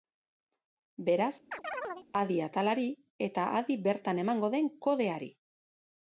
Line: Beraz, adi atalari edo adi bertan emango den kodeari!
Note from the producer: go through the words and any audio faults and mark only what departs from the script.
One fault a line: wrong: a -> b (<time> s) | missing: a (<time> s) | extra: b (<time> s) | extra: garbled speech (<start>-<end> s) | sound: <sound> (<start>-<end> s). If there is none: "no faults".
sound: chirp (1.5-2.1 s)
wrong: edo -> eta (3.3 s)